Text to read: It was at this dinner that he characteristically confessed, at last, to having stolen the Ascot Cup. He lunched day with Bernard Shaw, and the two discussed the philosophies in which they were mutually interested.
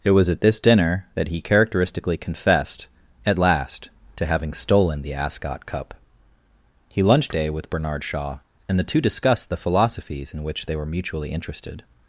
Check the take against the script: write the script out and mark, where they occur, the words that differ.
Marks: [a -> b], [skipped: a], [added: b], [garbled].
It was at this dinner that he characteristically confessed, at last, to having stolen the Ascot Cup. He lunched day with Bernard Shaw, and the two discussed the philosophies in which they were mutually interested.